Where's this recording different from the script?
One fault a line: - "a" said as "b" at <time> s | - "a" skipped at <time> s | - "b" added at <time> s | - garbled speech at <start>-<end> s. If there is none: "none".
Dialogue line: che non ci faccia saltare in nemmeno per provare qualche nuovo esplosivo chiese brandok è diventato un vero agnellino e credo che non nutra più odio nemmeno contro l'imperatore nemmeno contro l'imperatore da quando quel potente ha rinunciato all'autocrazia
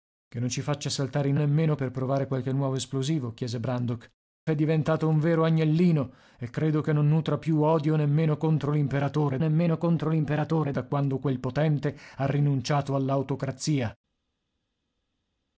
none